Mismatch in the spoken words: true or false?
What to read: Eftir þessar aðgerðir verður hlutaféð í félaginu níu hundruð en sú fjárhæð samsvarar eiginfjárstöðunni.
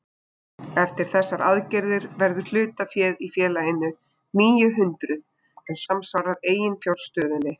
true